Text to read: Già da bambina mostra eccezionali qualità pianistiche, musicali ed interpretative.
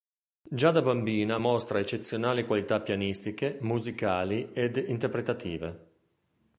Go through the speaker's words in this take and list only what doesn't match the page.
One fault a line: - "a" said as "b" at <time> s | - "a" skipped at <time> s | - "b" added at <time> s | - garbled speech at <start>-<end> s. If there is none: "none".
none